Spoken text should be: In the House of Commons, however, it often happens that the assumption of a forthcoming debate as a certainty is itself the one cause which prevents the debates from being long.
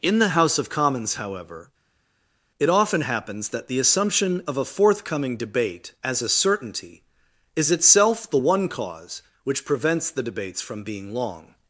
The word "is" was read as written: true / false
true